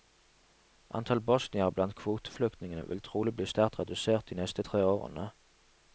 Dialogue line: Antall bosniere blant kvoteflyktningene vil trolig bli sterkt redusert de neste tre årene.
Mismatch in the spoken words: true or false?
false